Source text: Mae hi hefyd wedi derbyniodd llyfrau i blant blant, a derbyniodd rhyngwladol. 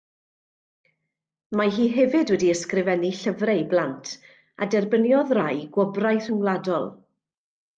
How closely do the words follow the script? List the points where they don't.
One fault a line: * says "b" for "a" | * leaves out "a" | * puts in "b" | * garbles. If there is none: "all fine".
* says "ysgrifennu" for "derbyniodd"
* leaves out "blant"
* puts in "rai gwobrau"